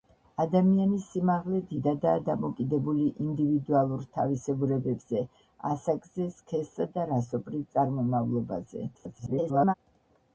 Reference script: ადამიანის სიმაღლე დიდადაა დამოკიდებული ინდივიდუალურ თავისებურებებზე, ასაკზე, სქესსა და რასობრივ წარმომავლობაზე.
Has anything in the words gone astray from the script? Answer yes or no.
yes